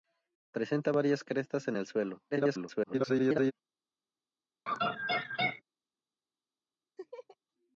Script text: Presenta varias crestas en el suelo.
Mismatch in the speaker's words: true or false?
true